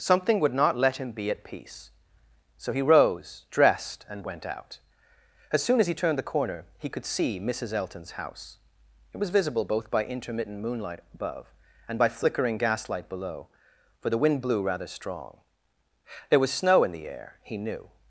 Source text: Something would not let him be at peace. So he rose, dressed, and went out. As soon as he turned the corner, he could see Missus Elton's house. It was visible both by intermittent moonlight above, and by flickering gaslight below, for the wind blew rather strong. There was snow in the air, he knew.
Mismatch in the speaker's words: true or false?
false